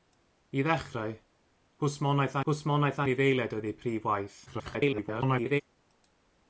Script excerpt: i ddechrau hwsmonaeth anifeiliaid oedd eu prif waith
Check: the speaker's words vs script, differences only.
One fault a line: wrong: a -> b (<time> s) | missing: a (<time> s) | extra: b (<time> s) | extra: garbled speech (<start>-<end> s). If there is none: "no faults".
extra: hwsmonaeth (2.5 s)
extra: garbled speech (4.5-5.6 s)